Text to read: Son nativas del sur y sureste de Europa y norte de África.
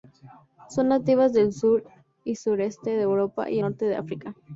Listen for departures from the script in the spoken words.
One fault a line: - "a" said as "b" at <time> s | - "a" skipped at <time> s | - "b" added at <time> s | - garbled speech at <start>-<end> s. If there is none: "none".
none